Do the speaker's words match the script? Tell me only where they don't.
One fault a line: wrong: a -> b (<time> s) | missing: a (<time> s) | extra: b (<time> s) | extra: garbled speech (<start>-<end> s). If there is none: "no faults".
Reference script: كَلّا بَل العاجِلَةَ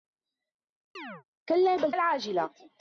no faults